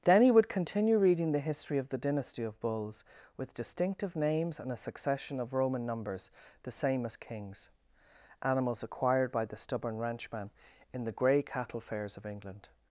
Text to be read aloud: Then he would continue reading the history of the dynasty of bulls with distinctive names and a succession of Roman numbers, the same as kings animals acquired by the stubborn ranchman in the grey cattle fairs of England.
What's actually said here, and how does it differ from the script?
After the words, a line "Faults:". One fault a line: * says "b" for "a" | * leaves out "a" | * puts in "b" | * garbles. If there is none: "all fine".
Then he would continue reading the history of the dynasty of bulls with distinctive names and a succession of Roman numbers, the same as kings animals acquired by the stubborn ranchman in the grey cattle fairs of England.
Faults:
all fine